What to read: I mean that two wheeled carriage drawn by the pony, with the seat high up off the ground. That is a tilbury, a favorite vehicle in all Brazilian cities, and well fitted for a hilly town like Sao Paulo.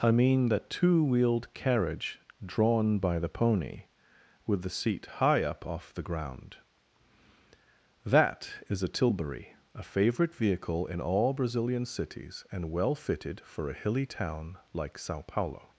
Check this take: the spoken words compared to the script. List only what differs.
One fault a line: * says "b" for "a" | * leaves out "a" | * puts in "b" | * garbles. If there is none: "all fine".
all fine